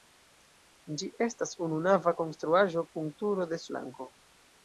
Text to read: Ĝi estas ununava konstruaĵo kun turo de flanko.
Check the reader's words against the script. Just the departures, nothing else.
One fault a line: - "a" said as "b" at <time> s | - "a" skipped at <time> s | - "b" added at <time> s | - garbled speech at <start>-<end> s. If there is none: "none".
none